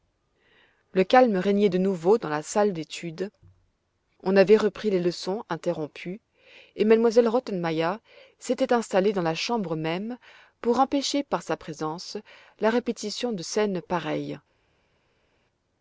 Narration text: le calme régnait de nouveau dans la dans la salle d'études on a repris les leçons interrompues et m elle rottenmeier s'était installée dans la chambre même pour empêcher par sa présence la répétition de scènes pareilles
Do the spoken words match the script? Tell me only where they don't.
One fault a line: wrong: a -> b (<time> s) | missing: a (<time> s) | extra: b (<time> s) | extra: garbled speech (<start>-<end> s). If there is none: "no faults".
missing: dans la (2.4 s)
wrong: a -> avait (4.4 s)